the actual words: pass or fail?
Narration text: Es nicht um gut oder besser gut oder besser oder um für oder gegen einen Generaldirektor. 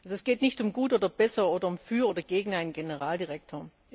fail